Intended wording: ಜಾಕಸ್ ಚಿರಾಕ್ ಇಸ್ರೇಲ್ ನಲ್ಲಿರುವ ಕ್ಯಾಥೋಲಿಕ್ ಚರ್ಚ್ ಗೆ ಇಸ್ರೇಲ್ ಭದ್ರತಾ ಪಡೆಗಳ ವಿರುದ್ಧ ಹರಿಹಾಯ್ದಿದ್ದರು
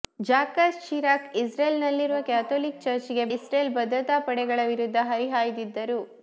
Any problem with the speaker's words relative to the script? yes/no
no